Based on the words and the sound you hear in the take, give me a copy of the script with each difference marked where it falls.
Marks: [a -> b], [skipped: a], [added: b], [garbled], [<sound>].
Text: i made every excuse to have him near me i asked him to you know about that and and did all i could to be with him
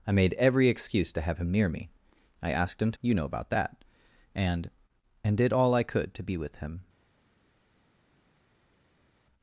i made every excuse to have him near me i asked him to you know about that and and did all i could to be with him